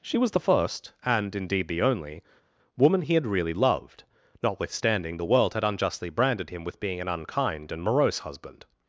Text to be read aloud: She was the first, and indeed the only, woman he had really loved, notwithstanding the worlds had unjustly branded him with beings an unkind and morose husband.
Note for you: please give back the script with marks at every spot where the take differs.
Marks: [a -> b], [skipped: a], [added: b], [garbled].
She was the first, and indeed the only, woman he had really loved, notwithstanding the [worlds -> world] had unjustly branded him with [beings -> being] an unkind and morose husband.